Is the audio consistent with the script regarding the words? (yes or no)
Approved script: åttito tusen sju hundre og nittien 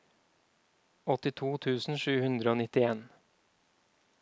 yes